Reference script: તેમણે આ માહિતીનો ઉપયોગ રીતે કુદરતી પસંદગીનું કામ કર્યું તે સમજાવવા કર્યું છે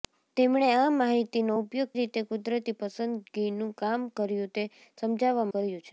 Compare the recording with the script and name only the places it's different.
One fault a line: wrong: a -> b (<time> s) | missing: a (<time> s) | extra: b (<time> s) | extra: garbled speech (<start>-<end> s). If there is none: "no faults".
no faults